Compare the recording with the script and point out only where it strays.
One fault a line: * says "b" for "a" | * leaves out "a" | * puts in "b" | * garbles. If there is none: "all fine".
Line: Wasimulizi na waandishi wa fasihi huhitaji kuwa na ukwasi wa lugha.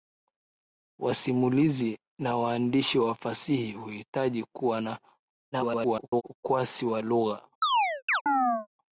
* garbles